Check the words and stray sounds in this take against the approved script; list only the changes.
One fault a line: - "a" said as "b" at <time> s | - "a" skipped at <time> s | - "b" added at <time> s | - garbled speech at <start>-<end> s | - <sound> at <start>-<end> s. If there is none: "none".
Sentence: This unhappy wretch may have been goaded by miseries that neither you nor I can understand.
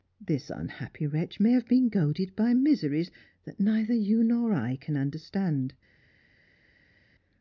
none